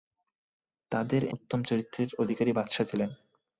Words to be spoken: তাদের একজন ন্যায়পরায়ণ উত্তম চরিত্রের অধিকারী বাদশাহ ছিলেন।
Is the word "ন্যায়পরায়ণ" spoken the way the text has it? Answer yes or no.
no